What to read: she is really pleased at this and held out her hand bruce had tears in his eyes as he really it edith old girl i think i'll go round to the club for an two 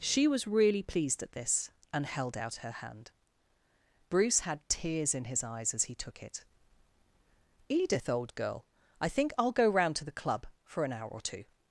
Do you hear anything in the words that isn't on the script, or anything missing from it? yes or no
yes